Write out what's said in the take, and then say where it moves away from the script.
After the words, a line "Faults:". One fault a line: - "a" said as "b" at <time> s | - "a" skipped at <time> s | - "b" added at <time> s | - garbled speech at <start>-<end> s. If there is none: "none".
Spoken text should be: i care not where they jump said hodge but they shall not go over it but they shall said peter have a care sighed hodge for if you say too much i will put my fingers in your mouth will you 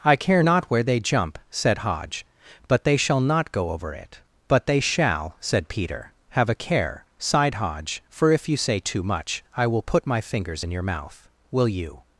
i care not where they jump said hodge but they shall not go over it but they shall said peter have a care sighed hodge for if you say too much i will put my fingers in your mouth will you
Faults:
none